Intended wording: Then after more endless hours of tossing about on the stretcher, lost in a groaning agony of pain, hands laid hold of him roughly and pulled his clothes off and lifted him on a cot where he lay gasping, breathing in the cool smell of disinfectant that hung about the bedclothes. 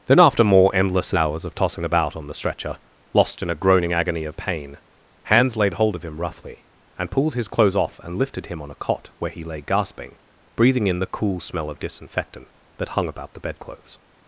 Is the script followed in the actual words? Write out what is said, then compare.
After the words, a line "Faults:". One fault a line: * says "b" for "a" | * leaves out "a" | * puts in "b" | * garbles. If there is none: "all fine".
Then after more endless hours of tossing about on the stretcher, lost in a groaning agony of pain, hands laid hold of him roughly and pulled his clothes off and lifted him on a cot where he lay gasping, breathing in the cool smell of disinfectant that hung about the bedclothes.
Faults:
all fine